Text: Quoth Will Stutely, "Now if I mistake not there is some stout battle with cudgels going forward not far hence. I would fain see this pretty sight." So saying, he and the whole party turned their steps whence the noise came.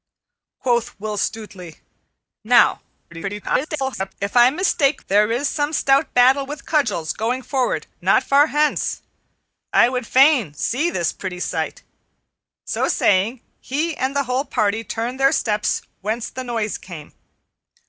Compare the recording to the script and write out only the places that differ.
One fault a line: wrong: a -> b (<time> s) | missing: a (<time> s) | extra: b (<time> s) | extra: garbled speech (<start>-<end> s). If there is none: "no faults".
extra: garbled speech (3.1-4.1 s)
missing: not (5.0 s)